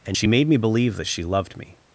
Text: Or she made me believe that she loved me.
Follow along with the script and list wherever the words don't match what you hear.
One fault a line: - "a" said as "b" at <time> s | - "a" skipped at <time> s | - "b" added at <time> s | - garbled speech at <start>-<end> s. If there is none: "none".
- "Or" said as "And" at 0.1 s